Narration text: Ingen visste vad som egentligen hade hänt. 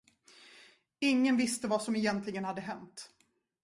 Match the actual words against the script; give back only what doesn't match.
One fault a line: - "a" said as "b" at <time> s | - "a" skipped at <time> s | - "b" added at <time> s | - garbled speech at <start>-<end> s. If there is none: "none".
none